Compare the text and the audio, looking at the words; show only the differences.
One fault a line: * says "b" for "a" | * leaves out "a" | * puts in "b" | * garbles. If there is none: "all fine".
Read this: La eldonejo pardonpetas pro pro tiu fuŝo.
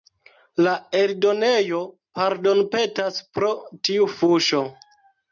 * leaves out "pro"